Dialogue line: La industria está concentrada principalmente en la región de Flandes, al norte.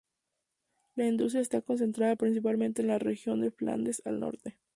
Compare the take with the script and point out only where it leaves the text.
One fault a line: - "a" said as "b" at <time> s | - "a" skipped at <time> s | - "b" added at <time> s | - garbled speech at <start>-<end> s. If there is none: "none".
none